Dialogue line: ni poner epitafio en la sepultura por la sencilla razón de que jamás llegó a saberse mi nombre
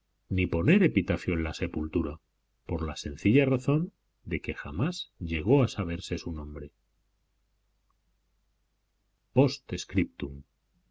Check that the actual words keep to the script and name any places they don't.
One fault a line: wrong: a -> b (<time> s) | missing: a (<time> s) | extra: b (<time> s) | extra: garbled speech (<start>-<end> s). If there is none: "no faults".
wrong: mi -> su (6.2 s)